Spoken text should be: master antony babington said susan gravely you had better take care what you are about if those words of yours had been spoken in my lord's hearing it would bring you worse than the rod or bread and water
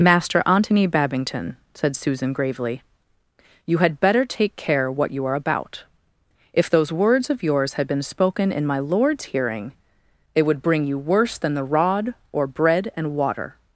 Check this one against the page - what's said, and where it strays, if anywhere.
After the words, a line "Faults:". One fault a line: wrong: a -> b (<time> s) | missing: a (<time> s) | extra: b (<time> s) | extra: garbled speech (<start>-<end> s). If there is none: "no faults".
master antony babington said susan gravely you had better take care what you are about if those words of yours had been spoken in my lord's hearing it would bring you worse than the rod or bread and water
Faults:
no faults